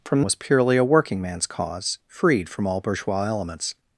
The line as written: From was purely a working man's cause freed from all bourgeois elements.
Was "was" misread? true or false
false